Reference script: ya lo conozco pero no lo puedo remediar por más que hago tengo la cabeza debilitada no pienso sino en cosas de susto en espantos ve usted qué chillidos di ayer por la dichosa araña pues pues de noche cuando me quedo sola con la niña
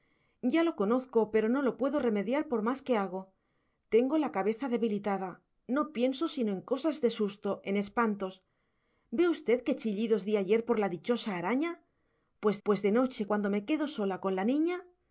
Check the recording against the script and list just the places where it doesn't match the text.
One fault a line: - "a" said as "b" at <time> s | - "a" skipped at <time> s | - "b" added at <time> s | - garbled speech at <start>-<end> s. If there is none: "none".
none